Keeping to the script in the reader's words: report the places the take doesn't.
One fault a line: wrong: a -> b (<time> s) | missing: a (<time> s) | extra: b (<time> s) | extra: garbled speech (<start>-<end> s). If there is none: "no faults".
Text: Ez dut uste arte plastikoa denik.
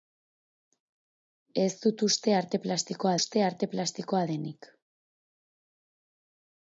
extra: uste arte plastikoa (3.2 s)